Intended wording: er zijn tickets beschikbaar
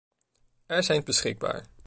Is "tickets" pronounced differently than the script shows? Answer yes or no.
yes